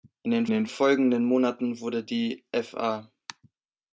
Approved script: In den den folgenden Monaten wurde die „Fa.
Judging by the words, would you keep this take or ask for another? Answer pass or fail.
pass